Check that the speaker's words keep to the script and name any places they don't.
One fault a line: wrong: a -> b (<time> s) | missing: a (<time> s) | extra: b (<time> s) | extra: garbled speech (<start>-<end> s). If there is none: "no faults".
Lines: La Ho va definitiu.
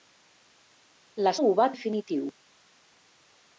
no faults